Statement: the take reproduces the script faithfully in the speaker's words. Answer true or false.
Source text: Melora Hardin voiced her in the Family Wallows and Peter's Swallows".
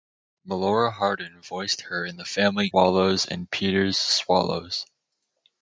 true